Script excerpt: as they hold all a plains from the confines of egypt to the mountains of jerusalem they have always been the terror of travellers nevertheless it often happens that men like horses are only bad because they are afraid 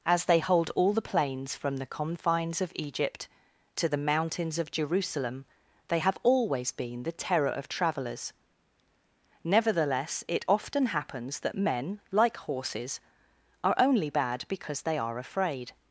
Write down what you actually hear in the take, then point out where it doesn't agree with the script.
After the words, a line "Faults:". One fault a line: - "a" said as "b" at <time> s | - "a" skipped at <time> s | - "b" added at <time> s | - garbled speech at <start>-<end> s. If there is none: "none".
as they hold all the plains from the confines of egypt to the mountains of jerusalem they have always been the terror of travellers nevertheless it often happens that men like horses are only bad because they are afraid
Faults:
- "a" said as "the" at 0.9 s